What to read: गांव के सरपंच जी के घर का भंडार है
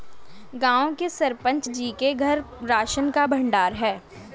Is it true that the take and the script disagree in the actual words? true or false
true